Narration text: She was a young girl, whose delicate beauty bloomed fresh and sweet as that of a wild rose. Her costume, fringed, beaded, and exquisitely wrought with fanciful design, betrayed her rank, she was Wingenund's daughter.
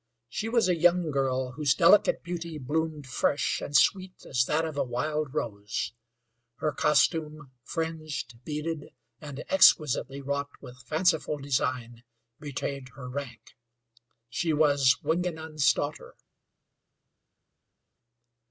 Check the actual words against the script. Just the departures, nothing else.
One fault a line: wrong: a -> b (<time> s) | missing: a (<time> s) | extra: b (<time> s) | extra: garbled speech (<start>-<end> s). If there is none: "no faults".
no faults